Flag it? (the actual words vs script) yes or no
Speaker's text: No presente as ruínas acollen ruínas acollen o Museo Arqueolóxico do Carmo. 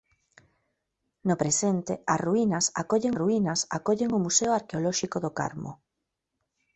no